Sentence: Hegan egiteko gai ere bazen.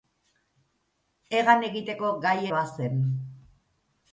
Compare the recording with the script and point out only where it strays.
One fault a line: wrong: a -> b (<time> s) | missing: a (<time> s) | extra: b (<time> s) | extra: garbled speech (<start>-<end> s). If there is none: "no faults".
missing: ere (2.4 s)